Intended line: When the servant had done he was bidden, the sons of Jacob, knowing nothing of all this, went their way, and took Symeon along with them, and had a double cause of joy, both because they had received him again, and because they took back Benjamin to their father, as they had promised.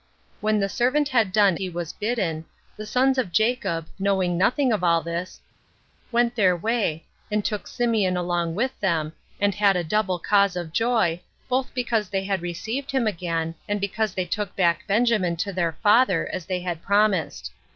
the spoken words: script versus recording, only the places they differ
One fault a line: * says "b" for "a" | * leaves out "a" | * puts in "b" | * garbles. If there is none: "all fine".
all fine